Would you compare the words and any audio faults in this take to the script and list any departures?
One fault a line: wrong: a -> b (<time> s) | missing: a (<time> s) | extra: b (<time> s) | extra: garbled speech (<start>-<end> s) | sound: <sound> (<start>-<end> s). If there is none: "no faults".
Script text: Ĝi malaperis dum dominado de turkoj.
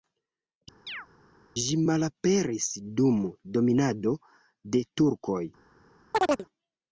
sound: chirp (0.9-1.1 s)
sound: chirp (6.1-6.5 s)